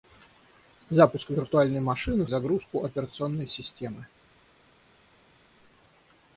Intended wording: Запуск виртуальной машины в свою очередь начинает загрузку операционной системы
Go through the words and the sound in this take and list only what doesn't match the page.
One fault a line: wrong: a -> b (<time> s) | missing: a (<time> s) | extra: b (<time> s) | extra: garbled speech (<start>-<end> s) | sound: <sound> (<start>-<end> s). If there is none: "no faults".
missing: свою очередь начинает (2.3 s)